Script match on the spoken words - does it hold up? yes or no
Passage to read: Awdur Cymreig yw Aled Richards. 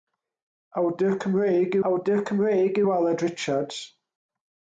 no